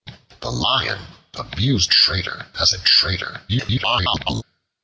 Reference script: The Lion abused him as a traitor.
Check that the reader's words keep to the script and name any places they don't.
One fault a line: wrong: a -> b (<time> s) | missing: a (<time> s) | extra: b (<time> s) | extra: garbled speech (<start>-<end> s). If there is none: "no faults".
wrong: him -> traitor (1.8 s)
extra: garbled speech (3.5-4.4 s)